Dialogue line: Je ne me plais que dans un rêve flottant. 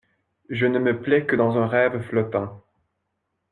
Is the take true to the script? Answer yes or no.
yes